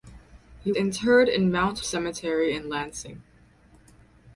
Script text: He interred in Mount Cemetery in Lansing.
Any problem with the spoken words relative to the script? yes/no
no